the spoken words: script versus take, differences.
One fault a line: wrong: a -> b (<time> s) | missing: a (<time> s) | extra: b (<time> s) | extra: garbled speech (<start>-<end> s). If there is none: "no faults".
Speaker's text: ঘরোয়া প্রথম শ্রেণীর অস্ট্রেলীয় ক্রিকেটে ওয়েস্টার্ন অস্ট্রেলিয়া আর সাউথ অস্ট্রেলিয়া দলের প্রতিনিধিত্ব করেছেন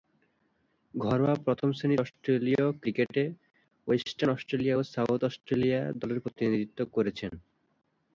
wrong: আর -> ও (4.7 s)